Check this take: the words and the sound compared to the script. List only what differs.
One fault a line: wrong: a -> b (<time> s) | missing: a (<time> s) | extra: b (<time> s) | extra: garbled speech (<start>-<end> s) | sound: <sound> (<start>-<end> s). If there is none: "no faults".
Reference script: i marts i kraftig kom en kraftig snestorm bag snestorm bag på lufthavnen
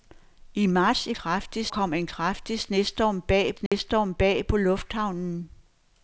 sound: dropout (3.7-3.7 s)